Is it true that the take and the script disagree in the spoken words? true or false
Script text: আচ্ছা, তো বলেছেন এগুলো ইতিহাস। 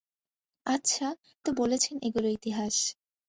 false